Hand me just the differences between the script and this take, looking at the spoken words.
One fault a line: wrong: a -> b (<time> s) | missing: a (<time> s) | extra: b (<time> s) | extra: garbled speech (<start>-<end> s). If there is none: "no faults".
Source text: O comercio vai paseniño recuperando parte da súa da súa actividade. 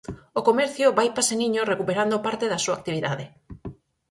missing: da súa (2.8 s)